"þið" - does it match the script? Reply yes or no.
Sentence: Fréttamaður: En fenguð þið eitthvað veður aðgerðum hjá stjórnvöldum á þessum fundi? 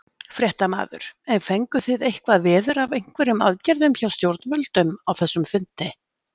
yes